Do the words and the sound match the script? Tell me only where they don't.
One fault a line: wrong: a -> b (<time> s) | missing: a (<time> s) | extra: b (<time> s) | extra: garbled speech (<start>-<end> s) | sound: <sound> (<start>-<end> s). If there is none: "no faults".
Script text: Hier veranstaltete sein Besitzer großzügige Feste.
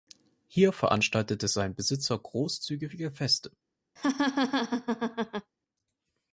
sound: laugh (4.0-5.5 s)